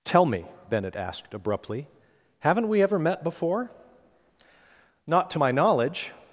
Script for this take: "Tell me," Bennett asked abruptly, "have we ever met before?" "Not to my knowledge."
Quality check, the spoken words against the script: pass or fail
fail